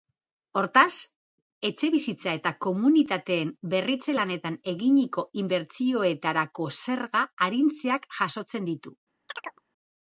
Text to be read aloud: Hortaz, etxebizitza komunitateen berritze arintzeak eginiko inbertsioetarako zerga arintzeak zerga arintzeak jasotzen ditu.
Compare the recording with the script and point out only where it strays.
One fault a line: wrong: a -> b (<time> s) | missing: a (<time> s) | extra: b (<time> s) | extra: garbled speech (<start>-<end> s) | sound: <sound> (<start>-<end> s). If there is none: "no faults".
extra: eta (2.4 s)
wrong: arintzeak -> lanetan (4.2 s)
missing: zerga arintzeak (8.1 s)
sound: chirp (9.3-9.6 s)